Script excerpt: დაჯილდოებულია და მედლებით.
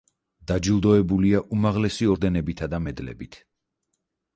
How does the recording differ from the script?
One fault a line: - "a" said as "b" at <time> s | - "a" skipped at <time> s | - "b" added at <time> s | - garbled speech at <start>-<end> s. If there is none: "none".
- "უმაღლესი ორდენებითა" added at 1.6 s